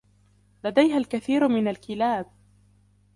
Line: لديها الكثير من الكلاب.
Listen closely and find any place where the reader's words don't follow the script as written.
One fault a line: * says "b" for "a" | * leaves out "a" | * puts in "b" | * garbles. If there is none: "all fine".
all fine